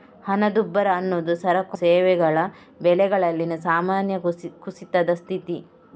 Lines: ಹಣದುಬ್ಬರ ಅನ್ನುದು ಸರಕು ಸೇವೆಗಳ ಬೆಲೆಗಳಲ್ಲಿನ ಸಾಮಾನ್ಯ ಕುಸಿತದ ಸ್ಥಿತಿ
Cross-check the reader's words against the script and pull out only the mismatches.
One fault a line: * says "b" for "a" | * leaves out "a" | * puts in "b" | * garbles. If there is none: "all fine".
all fine